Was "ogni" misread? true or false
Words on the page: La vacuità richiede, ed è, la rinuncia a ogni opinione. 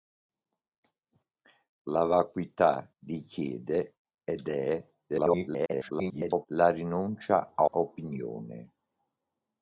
true